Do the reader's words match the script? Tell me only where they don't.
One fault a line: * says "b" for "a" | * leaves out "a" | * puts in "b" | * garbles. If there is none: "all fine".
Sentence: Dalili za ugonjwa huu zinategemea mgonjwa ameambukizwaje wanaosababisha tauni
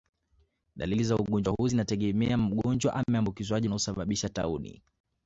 all fine